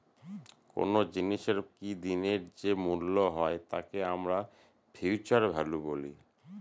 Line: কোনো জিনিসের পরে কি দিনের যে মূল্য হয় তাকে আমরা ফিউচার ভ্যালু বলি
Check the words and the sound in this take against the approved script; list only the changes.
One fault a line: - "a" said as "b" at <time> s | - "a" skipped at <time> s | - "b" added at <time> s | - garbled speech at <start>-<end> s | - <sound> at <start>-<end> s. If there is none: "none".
- "পরে" skipped at 1.6 s